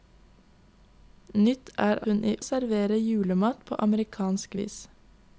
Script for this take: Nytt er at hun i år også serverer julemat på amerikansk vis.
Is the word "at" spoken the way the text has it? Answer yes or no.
no